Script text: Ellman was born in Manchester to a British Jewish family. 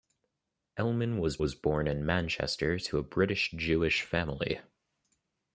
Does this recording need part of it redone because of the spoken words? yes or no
yes